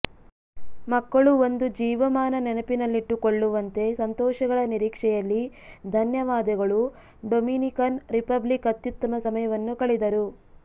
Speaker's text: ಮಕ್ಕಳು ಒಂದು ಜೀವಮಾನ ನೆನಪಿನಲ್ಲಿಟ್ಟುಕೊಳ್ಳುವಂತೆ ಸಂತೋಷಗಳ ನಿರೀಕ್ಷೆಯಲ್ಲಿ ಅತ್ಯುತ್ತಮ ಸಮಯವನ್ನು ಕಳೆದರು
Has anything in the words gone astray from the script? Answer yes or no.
yes